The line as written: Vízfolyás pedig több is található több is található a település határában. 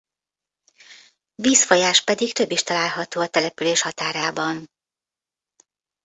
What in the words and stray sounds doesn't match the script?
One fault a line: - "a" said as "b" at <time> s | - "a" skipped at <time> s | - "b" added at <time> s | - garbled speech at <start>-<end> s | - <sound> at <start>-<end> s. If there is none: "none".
- "több is található" skipped at 3.2 s